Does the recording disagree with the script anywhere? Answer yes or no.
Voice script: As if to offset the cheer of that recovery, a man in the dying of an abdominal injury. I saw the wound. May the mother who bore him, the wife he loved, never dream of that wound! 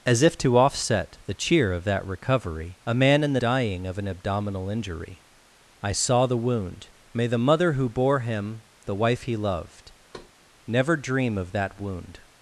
no